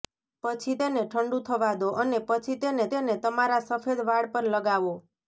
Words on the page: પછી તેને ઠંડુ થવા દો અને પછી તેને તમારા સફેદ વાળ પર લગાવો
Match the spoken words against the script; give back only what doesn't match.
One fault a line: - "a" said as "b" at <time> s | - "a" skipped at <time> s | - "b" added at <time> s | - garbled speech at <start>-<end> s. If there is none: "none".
- "તેને" added at 2.9 s